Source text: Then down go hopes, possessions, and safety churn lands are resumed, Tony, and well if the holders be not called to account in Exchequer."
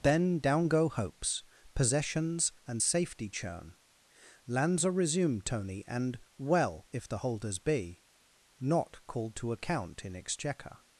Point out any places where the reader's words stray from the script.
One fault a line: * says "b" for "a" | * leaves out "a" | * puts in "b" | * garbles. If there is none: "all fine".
all fine